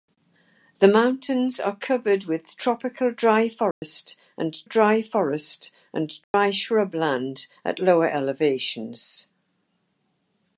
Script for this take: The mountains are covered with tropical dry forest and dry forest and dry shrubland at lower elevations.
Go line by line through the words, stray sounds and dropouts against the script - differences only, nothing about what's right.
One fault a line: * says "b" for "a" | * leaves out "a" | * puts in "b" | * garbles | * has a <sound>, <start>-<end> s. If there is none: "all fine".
* has a dropout, 3.7-3.8 s
* has a dropout, 6.2-6.3 s